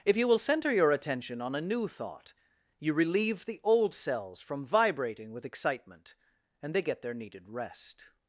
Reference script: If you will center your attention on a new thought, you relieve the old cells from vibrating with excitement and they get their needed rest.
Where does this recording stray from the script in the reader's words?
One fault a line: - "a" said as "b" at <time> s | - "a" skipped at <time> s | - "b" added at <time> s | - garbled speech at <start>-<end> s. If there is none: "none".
none